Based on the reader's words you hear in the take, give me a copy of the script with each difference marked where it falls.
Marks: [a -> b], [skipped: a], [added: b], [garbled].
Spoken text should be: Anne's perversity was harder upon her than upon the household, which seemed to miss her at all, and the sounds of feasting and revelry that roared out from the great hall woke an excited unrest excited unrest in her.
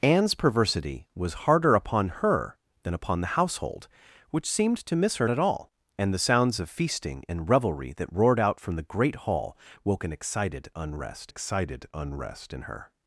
Anne's perversity was harder upon her than upon the household, which seemed to miss her at all, and the sounds of feasting and revelry that roared out from the great hall woke an excited unrest excited unrest in her.